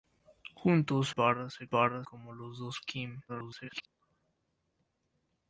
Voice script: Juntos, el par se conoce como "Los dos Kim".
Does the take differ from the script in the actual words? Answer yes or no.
yes